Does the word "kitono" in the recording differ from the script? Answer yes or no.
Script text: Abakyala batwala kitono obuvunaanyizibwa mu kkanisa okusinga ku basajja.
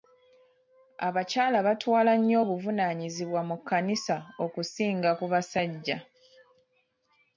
yes